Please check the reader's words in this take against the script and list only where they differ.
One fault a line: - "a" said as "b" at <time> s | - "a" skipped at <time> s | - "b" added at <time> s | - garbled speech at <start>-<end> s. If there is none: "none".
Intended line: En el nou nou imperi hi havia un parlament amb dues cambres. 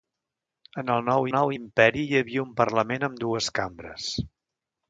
none